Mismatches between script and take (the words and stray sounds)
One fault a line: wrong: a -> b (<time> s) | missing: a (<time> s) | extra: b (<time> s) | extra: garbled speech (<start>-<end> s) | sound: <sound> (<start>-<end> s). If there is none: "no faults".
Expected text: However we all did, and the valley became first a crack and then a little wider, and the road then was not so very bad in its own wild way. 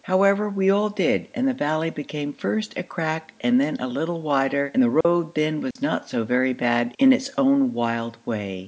sound: dropout (5.0-5.0 s)
sound: dropout (5.7-5.8 s)